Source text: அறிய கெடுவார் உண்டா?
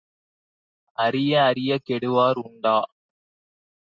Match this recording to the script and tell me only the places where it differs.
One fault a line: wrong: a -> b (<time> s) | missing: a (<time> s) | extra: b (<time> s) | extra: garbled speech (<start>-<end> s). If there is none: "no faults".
extra: அறியக் (1.4 s)